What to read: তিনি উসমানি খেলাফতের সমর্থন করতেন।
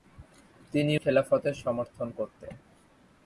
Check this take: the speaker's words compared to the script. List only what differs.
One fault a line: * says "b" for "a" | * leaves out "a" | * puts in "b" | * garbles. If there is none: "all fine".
* leaves out "উসমানি"